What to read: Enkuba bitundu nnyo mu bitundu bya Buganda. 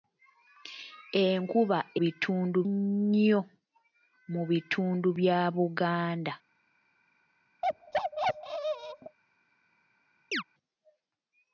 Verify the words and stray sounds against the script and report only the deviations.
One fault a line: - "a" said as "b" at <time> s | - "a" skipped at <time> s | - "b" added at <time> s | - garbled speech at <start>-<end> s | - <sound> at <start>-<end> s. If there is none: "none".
- bark at 7.6-9.2 s
- chirp at 10.3-10.4 s